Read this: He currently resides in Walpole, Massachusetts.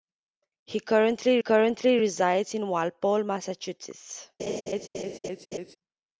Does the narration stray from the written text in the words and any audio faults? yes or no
yes